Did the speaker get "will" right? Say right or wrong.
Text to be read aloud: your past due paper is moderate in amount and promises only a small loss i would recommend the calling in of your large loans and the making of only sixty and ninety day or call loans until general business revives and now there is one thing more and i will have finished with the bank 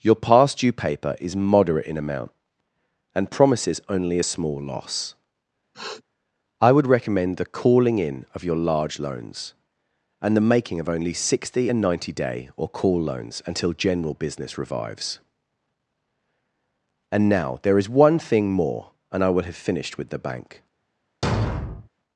right